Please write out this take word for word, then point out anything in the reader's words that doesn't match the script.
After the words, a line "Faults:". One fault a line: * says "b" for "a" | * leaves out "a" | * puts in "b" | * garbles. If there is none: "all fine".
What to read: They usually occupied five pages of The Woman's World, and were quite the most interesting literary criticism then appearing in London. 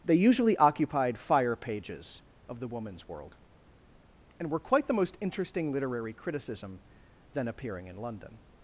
They usually occupied fire pages of The Woman's World, and were quite the most interesting literary criticism then appearing in London.
Faults:
* says "fire" for "five"